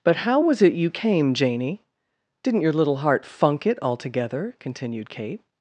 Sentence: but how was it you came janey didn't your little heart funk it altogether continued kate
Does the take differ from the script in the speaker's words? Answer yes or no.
no